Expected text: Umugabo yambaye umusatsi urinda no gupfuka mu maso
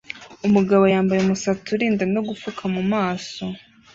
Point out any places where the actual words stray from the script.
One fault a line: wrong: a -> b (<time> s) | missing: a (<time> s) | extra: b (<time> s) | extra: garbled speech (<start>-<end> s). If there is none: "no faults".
no faults